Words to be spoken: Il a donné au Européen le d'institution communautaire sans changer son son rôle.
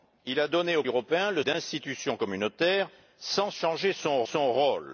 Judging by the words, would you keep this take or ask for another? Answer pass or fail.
pass